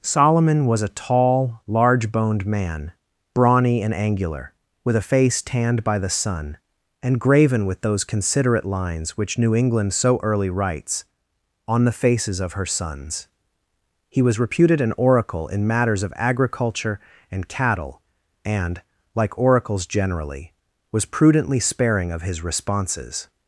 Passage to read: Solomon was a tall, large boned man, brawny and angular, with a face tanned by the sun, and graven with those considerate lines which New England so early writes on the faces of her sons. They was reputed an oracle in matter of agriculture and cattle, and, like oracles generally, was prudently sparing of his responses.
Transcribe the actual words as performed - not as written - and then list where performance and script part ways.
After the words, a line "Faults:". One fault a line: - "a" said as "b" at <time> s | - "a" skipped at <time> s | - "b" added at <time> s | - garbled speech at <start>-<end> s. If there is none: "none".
Solomon was a tall, large boned man, brawny and angular, with a face tanned by the sun, and graven with those considerate lines which New England so early writes on the faces of her sons. He was reputed an oracle in matters of agriculture and cattle, and, like oracles generally, was prudently sparing of his responses.
Faults:
- "They" said as "He" at 14.1 s
- "matter" said as "matters" at 15.7 s